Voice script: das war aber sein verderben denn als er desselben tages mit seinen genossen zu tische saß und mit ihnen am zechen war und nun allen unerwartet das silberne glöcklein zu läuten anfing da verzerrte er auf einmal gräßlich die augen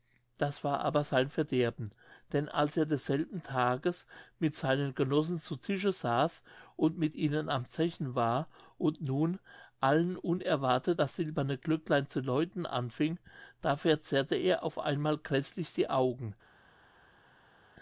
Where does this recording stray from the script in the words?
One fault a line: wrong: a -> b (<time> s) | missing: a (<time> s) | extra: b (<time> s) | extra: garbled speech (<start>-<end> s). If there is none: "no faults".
no faults